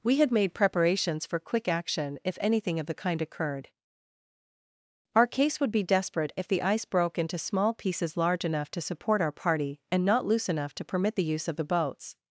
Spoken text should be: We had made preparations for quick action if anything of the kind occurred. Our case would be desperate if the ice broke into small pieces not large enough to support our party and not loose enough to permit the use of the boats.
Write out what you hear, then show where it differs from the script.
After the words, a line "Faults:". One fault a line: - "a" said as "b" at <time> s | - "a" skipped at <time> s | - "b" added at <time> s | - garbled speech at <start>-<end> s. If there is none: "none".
We had made preparations for quick action if anything of the kind occurred. Our case would be desperate if the ice broke into small pieces large enough to support our party and not loose enough to permit the use of the boats.
Faults:
- "not" skipped at 8.2 s